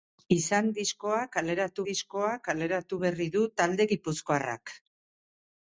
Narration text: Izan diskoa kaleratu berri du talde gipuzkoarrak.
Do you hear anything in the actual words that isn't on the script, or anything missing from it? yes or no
yes